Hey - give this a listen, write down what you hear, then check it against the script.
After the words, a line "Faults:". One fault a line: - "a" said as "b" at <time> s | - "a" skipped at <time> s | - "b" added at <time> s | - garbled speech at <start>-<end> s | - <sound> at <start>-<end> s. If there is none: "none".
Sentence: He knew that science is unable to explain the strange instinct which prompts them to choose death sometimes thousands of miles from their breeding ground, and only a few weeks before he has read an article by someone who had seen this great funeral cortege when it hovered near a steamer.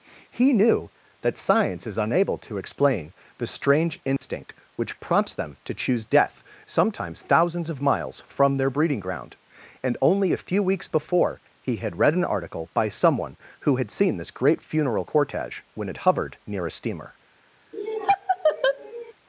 He knew that science is unable to explain the strange instinct which prompts them to choose death sometimes thousands of miles from their breeding ground, and only a few weeks before he had read an article by someone who had seen this great funeral cortege when it hovered near a steamer.
Faults:
- dropout at 4.2-4.2 s
- "has" said as "had" at 11.8 s
- laugh at 17.7-19.1 s